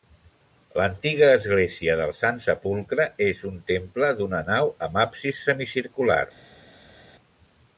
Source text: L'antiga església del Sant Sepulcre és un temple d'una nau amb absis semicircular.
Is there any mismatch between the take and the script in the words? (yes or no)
no